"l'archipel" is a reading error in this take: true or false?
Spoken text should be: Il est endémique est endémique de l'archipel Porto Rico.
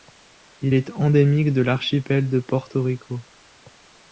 true